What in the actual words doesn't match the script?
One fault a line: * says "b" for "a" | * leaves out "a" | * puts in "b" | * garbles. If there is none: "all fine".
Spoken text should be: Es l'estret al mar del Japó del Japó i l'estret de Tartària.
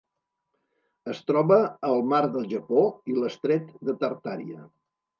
* says "troba" for "l'estret"
* leaves out "del Japó"